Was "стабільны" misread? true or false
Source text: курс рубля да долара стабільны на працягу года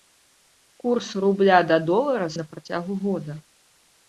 true